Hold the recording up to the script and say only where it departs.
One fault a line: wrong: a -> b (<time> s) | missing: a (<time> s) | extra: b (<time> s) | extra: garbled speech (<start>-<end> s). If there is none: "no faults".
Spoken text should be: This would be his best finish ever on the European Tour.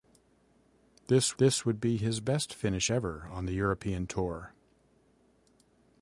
extra: this (1.4 s)